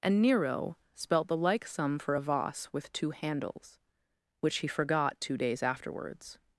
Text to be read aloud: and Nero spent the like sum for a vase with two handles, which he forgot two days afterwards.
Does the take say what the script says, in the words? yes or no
no